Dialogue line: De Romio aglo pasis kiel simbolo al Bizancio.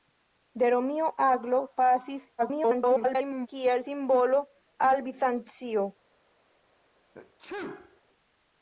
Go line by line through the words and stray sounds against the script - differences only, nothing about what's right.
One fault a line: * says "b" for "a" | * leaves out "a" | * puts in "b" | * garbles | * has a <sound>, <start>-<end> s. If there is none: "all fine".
* garbles
* has a sneeze, 7.1-8.0 s